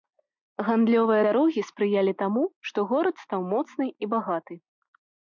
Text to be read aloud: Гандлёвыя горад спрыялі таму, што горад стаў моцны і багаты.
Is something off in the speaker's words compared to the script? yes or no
yes